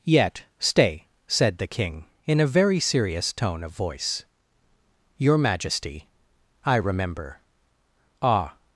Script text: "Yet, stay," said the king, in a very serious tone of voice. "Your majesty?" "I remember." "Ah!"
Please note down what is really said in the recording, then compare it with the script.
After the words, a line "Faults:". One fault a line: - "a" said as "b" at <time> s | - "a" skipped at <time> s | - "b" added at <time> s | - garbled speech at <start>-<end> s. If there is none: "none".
"Yet, stay," said the king, in a very serious tone of voice. "Your majesty?" "I remember." "Ah!"
Faults:
none